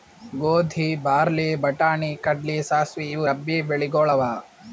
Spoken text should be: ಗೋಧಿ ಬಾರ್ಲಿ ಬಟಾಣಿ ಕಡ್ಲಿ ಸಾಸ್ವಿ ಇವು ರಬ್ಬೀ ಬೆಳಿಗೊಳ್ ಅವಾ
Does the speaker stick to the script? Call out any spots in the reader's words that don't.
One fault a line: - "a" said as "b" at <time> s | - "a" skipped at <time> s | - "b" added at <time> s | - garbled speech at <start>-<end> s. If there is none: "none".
none